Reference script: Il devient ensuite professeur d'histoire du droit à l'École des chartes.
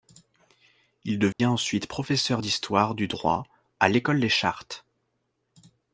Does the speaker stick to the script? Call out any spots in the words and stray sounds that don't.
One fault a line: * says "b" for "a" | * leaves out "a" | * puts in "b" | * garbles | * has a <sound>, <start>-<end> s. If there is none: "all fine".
* has a dropout, 1.3-1.4 s